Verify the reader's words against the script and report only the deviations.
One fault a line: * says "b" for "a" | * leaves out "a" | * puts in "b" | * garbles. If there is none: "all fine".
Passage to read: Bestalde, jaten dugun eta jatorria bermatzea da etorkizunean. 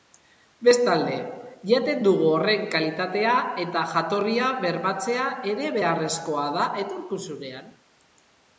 * puts in "horren kalitatea"
* puts in "ere beharrezkoa"